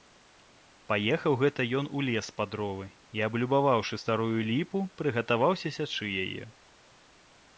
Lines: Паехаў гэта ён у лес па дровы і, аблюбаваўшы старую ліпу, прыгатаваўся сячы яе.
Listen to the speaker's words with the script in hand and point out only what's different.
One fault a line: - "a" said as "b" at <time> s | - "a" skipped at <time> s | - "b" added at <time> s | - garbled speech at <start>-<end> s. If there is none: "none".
none